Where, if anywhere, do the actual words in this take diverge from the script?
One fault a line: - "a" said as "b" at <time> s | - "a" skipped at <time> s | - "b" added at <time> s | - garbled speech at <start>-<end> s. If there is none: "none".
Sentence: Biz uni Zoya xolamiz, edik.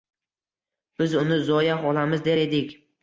- "der" added at 2.2 s